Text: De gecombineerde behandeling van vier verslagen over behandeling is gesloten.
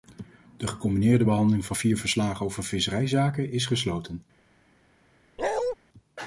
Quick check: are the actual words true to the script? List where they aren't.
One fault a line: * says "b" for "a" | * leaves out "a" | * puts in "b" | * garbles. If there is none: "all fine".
* says "visserijzaken" for "behandeling"